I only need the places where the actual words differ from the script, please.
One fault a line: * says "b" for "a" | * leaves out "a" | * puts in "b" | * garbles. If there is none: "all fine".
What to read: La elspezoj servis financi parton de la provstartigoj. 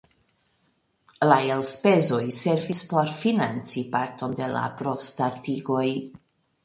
* puts in "por"